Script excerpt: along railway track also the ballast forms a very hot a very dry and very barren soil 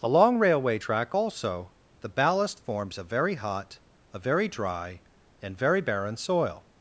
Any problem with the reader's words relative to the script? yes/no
no